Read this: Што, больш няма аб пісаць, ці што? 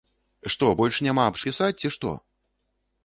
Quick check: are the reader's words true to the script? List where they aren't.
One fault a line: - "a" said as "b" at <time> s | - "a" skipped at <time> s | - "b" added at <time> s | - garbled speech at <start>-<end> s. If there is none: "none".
none